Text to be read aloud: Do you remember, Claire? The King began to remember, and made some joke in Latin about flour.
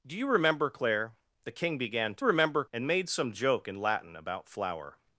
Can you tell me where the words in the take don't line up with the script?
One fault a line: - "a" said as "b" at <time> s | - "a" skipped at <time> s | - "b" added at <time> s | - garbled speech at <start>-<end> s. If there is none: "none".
none